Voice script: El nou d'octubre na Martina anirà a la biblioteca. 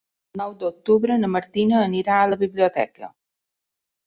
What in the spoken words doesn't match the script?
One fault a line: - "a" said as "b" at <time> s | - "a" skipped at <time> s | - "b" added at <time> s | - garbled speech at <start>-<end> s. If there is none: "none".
none